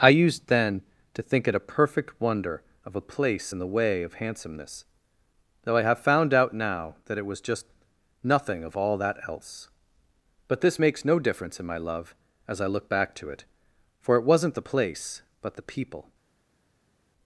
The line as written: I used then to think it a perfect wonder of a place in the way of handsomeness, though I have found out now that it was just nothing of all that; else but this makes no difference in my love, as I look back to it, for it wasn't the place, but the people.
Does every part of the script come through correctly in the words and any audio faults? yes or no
yes